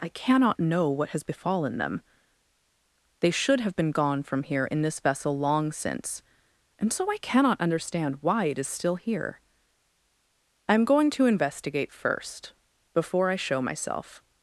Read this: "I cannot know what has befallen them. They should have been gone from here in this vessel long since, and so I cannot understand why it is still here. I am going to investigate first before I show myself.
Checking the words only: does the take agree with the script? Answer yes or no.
yes